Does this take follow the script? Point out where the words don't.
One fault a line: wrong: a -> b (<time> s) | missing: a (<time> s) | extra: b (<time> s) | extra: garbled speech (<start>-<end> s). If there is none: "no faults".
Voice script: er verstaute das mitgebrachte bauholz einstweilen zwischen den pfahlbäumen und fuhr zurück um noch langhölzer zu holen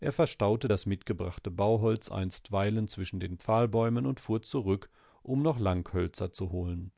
no faults